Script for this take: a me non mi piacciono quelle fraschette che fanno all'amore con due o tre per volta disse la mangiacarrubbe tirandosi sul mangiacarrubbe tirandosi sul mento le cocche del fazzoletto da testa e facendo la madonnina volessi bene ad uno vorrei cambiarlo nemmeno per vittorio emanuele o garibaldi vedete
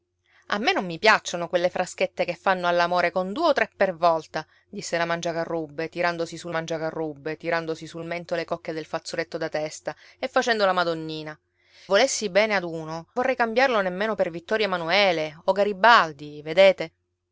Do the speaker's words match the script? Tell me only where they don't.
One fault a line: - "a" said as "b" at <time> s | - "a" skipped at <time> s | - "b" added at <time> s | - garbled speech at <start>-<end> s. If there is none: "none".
none